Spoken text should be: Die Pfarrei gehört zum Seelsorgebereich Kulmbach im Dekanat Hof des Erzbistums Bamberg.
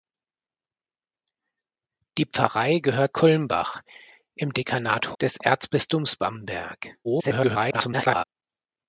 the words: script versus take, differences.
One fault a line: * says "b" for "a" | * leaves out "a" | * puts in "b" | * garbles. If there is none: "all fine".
* leaves out "zum Seelsorgebereich"
* leaves out "Hof"
* garbles